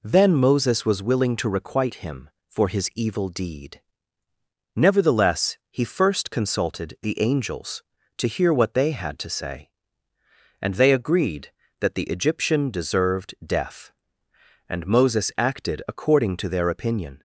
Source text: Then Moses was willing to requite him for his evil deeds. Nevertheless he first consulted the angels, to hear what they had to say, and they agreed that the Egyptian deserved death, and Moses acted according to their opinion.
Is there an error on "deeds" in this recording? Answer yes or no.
yes